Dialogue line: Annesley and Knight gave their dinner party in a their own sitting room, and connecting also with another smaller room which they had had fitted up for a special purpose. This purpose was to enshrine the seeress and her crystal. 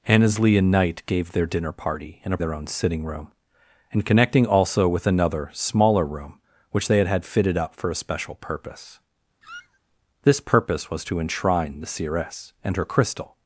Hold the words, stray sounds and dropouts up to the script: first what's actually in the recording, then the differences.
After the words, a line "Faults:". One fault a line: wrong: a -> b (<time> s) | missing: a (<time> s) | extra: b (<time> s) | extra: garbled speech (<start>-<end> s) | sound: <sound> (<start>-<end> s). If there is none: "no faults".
Annesley and Knight gave their dinner party in a their own sitting room, and connecting also with another smaller room which they had had fitted up for a special purpose. This purpose was to enshrine the seeress and her crystal.
Faults:
sound: squeak (9.4-9.8 s)